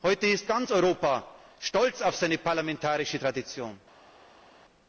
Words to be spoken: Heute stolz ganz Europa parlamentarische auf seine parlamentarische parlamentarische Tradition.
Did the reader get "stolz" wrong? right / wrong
wrong